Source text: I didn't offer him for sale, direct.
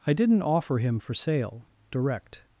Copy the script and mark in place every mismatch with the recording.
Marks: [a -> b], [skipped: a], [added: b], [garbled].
I didn't offer him for sale, direct.